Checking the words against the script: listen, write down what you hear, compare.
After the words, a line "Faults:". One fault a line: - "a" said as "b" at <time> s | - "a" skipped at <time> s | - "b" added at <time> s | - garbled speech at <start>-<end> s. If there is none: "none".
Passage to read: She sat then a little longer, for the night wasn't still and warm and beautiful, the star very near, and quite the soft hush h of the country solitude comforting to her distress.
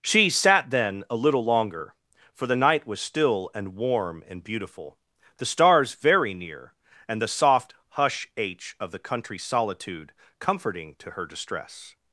She sat then a little longer, for the night was still and warm and beautiful, the stars very near, and the soft hush h of the country solitude comforting to her distress.
Faults:
- "wasn't" said as "was" at 2.9 s
- "star" said as "stars" at 5.5 s
- "quite" skipped at 7.2 s